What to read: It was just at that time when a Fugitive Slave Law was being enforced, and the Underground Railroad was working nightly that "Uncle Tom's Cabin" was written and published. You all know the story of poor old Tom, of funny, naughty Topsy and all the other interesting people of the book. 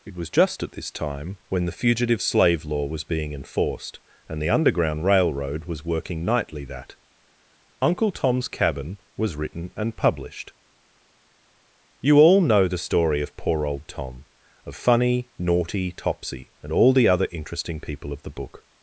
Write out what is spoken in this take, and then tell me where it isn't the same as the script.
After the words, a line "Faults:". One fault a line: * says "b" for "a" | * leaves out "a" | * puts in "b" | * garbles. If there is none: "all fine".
It was just at this time when the Fugitive Slave Law was being enforced, and the Underground Railroad was working nightly that "Uncle Tom's Cabin" was written and published. You all know the story of poor old Tom, of funny, naughty Topsy and all the other interesting people of the book.
Faults:
* says "this" for "that"
* says "the" for "a"